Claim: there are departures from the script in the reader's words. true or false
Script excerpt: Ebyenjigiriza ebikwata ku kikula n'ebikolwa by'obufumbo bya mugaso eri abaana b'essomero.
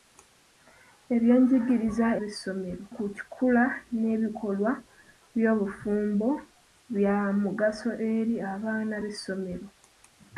true